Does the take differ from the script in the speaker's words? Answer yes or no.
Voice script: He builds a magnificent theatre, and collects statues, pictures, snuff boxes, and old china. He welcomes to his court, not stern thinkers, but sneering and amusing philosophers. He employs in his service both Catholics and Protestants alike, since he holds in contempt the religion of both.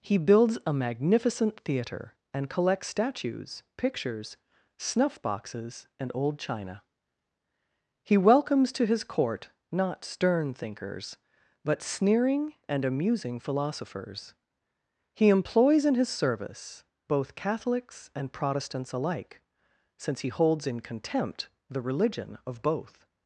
no